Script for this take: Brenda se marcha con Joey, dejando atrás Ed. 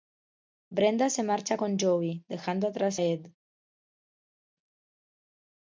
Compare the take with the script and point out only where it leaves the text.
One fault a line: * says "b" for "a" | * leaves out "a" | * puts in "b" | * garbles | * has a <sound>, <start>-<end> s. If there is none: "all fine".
all fine